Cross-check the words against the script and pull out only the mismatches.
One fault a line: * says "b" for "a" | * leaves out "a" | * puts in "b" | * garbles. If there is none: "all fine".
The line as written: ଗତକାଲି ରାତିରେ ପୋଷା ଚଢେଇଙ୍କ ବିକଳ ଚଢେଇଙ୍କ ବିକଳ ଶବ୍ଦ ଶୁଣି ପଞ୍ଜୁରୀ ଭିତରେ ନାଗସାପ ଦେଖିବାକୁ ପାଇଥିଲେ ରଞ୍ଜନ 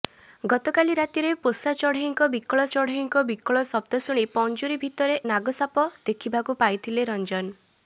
all fine